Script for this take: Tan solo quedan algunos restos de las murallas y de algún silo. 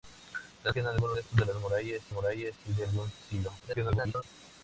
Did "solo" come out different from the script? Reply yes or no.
yes